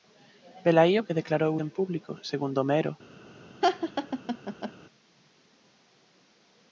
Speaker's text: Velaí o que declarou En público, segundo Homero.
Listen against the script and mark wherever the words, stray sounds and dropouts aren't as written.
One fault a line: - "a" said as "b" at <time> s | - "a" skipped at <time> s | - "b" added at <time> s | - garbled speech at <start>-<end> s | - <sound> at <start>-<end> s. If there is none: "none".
- laugh at 3.6-4.7 s